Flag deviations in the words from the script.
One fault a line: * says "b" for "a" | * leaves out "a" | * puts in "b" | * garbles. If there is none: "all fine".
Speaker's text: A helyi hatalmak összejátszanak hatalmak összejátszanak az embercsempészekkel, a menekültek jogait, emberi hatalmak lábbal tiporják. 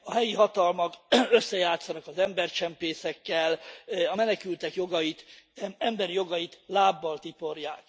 * leaves out "hatalmak összejátszanak"
* says "jogait" for "hatalmak"